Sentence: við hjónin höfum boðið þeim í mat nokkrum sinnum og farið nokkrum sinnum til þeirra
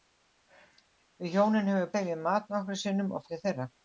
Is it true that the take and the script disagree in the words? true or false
true